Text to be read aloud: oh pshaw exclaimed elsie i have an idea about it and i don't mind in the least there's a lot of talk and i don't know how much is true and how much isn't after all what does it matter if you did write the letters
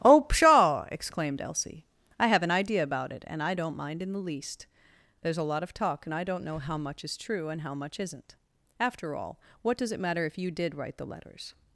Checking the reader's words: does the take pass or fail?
pass